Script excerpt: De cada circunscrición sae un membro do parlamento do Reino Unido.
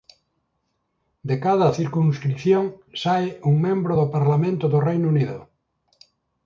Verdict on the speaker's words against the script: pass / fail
pass